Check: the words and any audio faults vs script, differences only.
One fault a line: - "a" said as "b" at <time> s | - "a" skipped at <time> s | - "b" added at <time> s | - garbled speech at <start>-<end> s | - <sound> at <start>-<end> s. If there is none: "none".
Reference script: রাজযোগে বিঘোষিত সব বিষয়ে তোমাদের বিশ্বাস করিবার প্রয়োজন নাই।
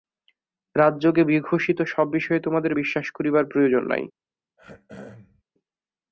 - throat clearing at 4.6-5.4 s